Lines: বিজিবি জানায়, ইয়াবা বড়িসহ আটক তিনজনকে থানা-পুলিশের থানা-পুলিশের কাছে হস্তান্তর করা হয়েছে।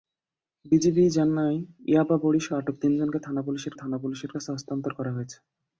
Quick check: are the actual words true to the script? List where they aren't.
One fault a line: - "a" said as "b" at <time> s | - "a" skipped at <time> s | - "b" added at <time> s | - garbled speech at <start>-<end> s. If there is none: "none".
none